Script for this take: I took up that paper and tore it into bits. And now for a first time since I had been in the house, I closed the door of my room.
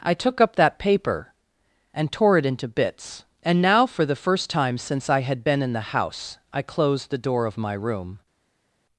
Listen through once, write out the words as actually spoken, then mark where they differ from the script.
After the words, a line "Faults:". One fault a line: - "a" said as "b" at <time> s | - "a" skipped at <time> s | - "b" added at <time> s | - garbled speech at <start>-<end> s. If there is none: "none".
I took up that paper and tore it into bits. And now for the first time since I had been in the house, I closed the door of my room.
Faults:
- "a" said as "the" at 4.0 s